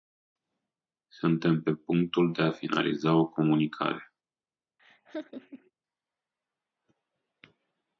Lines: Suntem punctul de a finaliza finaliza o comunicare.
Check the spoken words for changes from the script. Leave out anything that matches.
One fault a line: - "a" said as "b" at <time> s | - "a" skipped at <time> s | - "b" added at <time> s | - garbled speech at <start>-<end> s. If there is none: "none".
- "pe" added at 1.6 s
- "finaliza" skipped at 3.1 s